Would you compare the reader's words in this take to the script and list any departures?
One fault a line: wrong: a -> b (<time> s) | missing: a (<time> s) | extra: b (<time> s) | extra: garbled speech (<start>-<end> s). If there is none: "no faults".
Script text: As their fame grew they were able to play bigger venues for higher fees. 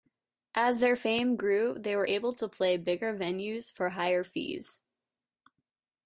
no faults